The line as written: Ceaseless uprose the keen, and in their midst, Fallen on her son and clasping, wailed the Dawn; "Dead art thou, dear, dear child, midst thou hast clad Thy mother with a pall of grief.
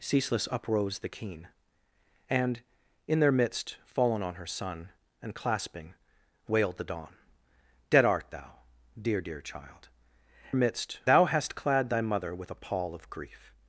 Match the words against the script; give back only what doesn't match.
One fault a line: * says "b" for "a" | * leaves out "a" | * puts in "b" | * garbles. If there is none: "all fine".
all fine